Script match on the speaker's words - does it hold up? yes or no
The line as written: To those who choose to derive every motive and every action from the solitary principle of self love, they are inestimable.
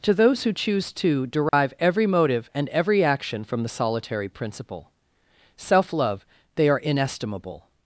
no